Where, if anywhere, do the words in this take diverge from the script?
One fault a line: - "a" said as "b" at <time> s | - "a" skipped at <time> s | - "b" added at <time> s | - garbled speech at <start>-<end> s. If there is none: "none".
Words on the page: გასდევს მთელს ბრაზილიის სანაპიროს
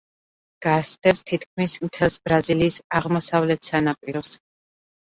- "თითქმის" added at 1.3 s
- "აღმოსავლეთ" added at 3.0 s